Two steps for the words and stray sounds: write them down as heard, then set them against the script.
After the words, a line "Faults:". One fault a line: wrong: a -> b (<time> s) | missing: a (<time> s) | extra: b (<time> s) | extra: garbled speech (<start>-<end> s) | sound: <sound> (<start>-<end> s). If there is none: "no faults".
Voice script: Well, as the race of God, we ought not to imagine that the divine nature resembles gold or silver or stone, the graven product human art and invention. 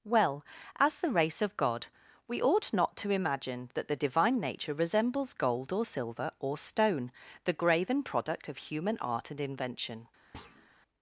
Well, as the race of God, we ought not to imagine that the divine nature resembles gold or silver or stone, the graven product of human art and invention.
Faults:
extra: of (8.5 s)
sound: thud (10.3-10.7 s)